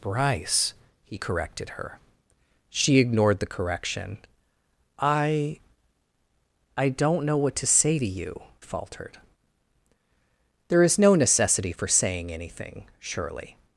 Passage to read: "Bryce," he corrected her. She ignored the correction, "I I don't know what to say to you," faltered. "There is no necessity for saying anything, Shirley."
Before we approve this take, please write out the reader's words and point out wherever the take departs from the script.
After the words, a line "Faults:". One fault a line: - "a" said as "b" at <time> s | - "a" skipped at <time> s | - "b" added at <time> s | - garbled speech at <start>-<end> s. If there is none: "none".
"Bryce," he corrected her. She ignored the correction, "I I don't know what to say to you," faltered. "There is no necessity for saying anything, Shirley."
Faults:
none